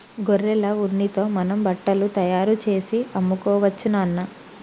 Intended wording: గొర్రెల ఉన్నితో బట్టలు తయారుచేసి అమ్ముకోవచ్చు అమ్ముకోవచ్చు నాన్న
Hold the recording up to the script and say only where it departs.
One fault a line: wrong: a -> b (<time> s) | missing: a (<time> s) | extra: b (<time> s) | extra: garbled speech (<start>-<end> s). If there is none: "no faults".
extra: మనం (1.4 s)
missing: అమ్ముకోవచ్చు (3.9 s)